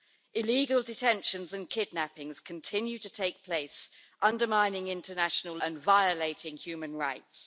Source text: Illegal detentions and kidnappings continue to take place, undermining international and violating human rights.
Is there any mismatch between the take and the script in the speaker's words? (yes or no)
no